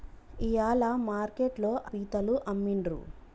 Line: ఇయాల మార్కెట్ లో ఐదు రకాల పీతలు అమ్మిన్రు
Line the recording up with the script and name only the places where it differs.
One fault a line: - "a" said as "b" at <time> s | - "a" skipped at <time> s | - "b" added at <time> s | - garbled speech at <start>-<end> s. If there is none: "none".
- "ఐదు రకాల" skipped at 1.7 s